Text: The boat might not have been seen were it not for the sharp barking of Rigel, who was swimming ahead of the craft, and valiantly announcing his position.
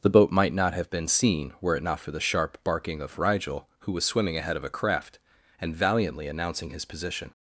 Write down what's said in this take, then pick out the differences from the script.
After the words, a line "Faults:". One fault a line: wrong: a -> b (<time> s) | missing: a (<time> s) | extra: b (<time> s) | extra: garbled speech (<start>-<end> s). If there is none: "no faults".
The boat might not have been seen were it not for the sharp barking of Rigel, who was swimming ahead of a craft, and valiantly announcing his position.
Faults:
wrong: the -> a (4.6 s)